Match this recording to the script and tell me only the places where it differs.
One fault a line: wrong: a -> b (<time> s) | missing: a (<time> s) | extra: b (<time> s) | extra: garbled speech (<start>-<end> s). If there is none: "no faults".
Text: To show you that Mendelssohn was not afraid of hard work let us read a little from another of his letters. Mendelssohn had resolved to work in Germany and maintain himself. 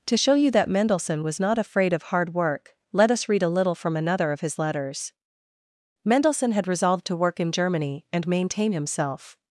no faults